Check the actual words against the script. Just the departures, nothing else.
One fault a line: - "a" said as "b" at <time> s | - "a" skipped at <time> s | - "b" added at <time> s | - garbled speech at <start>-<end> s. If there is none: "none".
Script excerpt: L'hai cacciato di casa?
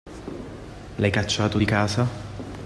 none